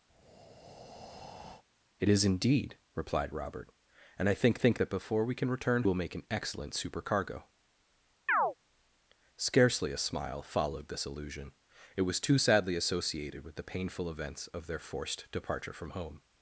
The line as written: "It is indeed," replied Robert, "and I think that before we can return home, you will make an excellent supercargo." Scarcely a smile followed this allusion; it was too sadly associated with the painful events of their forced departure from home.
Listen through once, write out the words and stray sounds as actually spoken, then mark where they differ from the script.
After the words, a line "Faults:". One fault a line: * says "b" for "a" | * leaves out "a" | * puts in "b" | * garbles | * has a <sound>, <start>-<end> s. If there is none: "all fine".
"It is indeed," replied Robert, "and I think think that before we can return will make an excellent supercargo." Scarcely a smile followed this allusion; it was too sadly associated with the painful events of their forced departure from home.
Faults:
* has a breath, 0.1-1.6 s
* puts in "think"
* leaves out "home you"
* has a chirp, 8.3-8.5 s